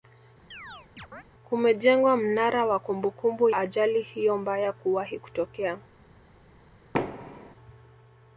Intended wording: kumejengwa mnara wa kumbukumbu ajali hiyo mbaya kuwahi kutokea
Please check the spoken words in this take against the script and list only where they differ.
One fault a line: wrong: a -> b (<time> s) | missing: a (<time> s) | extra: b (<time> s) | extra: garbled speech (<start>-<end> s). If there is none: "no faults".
no faults